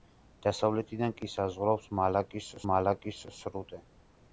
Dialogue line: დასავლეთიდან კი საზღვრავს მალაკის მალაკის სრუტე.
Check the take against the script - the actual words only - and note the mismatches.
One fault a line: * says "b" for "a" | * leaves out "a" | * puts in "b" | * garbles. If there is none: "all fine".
all fine